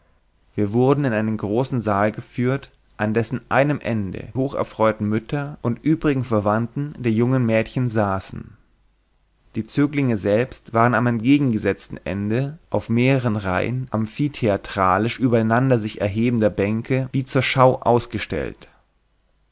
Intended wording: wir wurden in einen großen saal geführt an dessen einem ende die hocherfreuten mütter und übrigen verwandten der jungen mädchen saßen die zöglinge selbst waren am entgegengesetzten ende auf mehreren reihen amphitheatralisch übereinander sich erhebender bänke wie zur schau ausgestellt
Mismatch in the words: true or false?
true